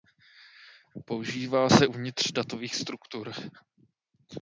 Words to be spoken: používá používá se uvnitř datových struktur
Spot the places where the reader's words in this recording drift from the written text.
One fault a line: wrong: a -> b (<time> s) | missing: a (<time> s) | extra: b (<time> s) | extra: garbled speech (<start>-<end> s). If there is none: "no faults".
missing: používá (1.7 s)